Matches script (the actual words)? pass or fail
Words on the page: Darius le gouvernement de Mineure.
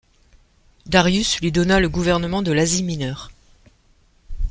fail